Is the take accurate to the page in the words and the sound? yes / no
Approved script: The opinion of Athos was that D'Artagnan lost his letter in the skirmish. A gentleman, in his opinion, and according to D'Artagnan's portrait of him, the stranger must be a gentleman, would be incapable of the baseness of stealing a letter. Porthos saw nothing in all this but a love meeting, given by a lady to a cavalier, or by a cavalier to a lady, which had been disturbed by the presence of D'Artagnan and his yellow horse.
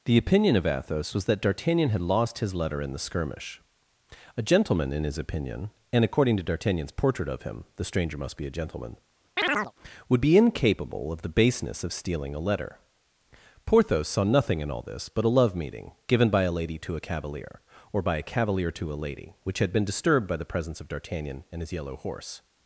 no